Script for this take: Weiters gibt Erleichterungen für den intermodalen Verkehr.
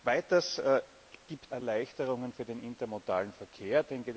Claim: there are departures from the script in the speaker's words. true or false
false